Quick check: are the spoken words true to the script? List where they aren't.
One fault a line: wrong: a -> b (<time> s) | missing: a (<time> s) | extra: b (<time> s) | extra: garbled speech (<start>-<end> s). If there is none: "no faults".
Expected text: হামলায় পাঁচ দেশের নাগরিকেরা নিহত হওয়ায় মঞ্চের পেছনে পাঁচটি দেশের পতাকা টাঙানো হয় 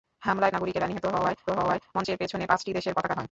missing: পাঁচ দেশের (0.5 s)
extra: হওয়ায় (1.5 s)
missing: টাঙানো (3.1 s)